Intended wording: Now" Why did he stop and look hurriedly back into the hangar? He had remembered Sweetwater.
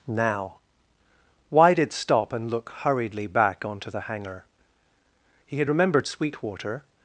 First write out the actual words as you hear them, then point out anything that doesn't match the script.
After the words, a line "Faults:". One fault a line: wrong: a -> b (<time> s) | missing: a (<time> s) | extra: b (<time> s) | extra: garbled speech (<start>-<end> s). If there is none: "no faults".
Now" Why did stop and look hurriedly back onto the hangar? He had remembered Sweetwater.
Faults:
missing: he (1.9 s)
wrong: into -> onto (3.6 s)